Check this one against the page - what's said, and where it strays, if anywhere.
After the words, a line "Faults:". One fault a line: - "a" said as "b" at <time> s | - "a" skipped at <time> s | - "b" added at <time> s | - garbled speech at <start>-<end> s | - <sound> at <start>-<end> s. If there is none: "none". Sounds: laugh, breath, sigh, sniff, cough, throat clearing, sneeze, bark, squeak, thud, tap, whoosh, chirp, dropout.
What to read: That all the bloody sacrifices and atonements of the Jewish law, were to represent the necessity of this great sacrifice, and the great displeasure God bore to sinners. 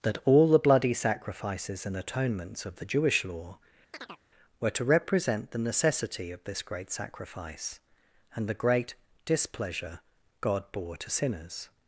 That all the bloody sacrifices and atonements of the Jewish law, were to represent the necessity of this great sacrifice, and the great displeasure God bore to sinners.
Faults:
- chirp at 3.9-4.2 s